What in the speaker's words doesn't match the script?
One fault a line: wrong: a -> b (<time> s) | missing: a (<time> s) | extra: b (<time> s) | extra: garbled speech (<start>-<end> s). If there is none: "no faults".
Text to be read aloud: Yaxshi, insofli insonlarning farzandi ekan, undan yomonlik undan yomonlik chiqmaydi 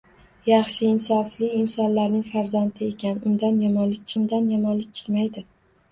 no faults